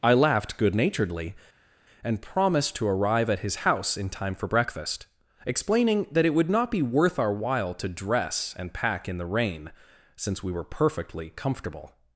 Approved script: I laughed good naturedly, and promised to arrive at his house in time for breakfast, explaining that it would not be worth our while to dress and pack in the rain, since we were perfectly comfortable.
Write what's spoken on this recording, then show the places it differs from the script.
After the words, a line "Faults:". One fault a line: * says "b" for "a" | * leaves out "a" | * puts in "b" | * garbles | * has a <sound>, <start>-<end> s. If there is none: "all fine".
I laughed good naturedly, and promised to arrive at his house in time for breakfast, explaining that it would not be worth our while to dress and pack in the rain, since we were perfectly comfortable.
Faults:
all fine